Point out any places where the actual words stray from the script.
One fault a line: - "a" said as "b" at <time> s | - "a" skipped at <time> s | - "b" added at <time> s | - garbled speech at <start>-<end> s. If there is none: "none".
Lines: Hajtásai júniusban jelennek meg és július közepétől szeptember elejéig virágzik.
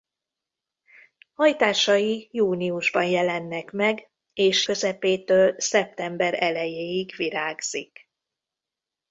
- "július" skipped at 4.7 s